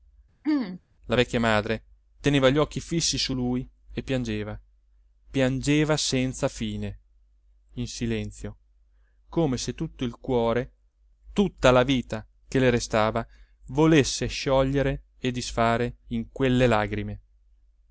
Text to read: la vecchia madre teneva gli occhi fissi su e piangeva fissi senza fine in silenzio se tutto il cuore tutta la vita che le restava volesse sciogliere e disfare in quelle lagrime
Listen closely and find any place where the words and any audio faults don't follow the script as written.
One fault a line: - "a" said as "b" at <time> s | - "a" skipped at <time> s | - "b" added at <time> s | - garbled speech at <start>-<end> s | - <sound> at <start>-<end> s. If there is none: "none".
- throat clearing at 0.4-0.8 s
- "lui" added at 3.3 s
- "fissi" said as "piangeva" at 5.3 s
- "come" added at 9.3 s